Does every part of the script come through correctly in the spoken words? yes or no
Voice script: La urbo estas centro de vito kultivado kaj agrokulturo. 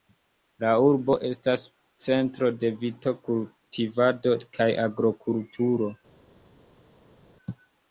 yes